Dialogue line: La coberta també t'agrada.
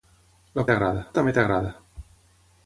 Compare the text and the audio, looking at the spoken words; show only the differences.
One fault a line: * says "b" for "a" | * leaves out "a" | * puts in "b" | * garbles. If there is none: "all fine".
* says "t'agrada" for "coberta"